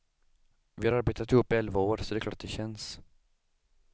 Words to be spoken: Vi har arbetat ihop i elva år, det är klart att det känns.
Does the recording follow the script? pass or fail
fail